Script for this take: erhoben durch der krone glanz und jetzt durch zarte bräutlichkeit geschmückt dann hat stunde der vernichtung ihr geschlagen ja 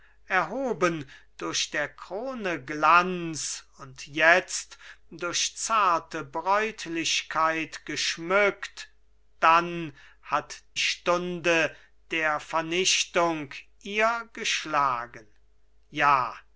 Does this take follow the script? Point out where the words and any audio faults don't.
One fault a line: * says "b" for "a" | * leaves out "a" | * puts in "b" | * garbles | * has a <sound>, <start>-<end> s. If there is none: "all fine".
all fine